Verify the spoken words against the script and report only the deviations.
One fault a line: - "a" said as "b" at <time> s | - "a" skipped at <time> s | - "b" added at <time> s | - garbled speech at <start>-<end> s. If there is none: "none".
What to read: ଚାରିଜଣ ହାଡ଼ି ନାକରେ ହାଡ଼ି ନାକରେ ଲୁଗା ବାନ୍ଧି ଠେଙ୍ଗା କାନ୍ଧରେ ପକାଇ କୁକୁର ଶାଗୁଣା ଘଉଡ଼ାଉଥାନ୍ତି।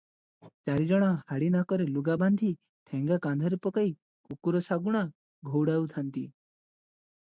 - "ହାଡ଼ି ନାକରେ" skipped at 1.9 s